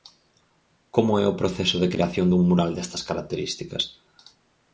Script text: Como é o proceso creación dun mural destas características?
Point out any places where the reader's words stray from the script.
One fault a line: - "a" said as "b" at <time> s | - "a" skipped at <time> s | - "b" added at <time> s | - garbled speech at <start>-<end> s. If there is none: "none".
- "de" added at 1.8 s